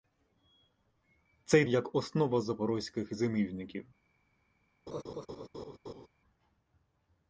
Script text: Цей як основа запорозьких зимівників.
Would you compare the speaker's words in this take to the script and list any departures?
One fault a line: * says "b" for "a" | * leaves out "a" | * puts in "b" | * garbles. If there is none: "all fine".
all fine